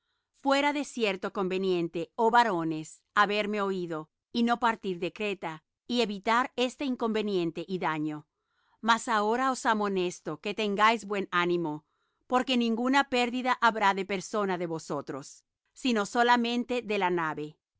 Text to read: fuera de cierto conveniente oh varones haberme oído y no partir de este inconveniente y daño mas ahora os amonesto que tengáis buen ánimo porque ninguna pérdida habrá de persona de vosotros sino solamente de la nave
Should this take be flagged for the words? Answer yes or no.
yes